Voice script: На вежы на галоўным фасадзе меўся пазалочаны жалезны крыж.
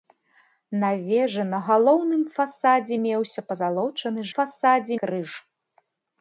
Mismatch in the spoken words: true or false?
true